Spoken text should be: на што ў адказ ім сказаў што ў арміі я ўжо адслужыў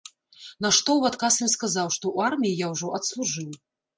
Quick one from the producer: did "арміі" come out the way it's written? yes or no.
yes